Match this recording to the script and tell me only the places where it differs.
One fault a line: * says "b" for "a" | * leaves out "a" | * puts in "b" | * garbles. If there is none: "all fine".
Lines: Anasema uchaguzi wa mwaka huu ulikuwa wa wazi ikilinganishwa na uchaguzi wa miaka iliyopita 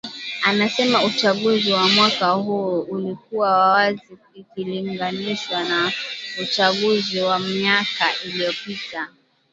all fine